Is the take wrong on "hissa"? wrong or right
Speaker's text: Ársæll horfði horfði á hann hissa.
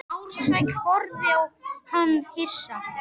right